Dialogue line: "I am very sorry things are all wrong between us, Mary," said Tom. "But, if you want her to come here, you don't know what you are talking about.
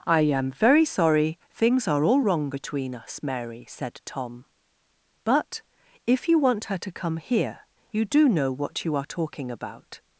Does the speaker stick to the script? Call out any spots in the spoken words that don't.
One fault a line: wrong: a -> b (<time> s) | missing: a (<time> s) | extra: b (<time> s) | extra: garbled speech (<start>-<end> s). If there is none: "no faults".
wrong: don't -> do (8.0 s)